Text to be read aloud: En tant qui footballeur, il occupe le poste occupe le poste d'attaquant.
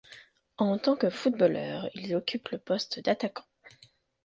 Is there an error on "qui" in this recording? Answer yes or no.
yes